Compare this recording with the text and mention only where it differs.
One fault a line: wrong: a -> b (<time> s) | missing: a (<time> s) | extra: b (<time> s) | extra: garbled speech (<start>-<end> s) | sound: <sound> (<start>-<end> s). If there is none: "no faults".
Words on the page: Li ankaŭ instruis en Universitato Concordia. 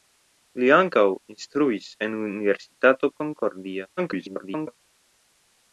extra: garbled speech (4.0-4.8 s)